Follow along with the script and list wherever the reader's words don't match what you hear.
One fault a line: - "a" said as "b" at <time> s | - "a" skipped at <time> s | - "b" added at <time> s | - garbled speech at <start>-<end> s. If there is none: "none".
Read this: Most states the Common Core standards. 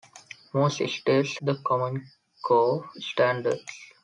none